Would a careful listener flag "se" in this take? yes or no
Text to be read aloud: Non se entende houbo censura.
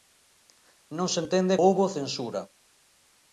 no